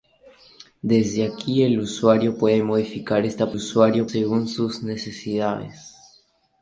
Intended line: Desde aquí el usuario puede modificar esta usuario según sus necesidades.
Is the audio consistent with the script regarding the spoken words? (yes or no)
yes